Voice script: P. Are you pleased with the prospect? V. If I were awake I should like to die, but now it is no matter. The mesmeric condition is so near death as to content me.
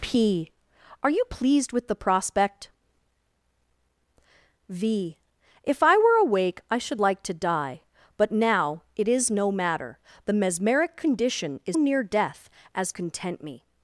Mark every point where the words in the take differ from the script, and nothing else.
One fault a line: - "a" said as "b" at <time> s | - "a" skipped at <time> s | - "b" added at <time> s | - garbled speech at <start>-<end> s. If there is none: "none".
- "so" skipped at 11.8 s
- "to" skipped at 12.9 s